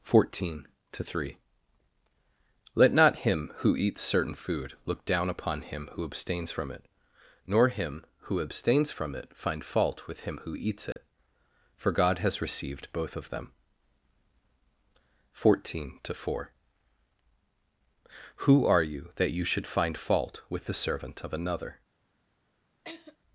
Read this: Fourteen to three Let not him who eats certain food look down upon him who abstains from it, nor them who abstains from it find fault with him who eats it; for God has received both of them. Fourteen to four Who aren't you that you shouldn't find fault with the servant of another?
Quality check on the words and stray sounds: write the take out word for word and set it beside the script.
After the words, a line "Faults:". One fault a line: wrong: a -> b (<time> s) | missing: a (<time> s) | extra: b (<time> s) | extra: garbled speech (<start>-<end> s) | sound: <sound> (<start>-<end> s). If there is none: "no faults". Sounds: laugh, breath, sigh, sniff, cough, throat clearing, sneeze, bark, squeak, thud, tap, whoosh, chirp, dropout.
Fourteen to three Let not him who eats certain food look down upon him who abstains from it, nor him who abstains from it find fault with him who eats it; for God has received both of them. Fourteen to four Who are you that you should find fault with the servant of another?
Faults:
wrong: them -> him (7.7 s)
sound: dropout (10.9-11.0 s)
wrong: aren't -> are (18.7 s)
wrong: shouldn't -> should (19.4 s)
sound: laugh (22.8-23.2 s)